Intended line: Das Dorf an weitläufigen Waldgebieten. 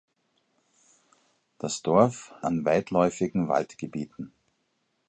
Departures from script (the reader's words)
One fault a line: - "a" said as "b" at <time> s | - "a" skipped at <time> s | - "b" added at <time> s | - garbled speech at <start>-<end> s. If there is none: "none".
none